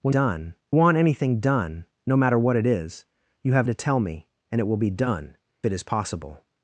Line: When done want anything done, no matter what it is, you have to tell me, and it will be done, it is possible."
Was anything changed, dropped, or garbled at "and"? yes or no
no